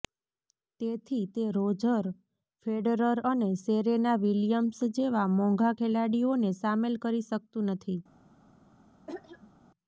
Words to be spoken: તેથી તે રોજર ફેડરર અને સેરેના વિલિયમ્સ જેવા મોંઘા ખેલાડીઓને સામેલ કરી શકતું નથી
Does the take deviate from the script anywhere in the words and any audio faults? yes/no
yes